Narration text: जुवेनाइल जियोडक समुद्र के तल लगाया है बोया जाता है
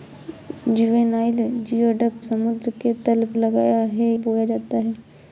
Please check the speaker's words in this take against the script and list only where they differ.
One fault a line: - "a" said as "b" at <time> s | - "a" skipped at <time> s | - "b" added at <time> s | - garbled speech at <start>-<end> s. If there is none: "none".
none